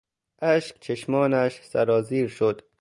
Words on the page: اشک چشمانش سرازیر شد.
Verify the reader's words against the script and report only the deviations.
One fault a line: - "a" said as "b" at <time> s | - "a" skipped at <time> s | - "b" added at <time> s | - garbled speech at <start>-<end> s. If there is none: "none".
none